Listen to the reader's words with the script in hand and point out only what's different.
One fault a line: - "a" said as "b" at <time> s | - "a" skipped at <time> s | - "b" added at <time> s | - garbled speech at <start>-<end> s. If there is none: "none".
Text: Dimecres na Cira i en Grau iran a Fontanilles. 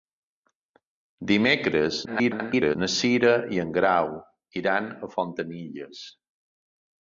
- garbled speech at 2.1-2.8 s